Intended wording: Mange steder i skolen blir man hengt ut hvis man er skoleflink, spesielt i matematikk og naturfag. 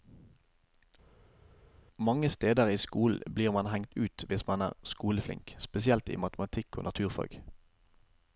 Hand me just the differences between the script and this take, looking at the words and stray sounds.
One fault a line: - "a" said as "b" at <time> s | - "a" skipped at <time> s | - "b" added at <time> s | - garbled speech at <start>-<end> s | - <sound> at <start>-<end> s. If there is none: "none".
none